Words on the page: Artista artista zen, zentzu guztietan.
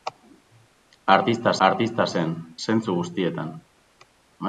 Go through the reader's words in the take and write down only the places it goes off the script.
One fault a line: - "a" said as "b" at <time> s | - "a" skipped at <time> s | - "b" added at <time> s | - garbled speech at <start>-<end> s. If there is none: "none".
none